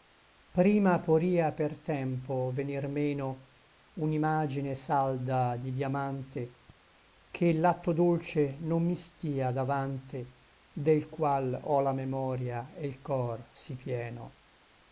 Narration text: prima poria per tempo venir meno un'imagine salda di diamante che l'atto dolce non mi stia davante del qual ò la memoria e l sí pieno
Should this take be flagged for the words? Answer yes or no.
yes